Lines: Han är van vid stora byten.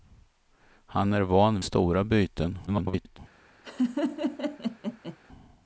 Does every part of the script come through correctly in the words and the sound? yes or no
no